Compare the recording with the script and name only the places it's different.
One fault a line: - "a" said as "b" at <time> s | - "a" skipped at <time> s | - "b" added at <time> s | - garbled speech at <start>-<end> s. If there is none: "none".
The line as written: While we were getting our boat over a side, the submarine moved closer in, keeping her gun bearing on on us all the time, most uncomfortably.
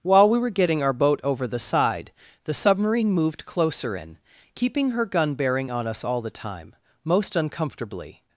- "a" said as "the" at 1.5 s
- "on" skipped at 5.9 s